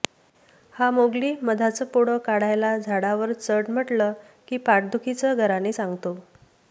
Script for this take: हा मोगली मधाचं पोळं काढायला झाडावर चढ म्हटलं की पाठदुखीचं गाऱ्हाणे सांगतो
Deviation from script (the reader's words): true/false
false